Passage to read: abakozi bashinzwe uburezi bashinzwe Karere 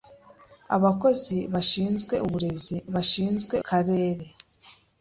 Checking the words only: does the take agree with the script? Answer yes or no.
yes